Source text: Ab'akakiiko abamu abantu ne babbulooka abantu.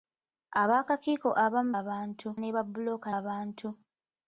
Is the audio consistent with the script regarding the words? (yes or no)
yes